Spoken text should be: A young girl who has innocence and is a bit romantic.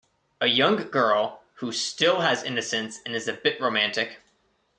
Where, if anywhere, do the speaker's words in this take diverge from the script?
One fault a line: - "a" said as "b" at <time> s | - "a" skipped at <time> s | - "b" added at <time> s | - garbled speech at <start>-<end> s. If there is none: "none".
- "still" added at 1.7 s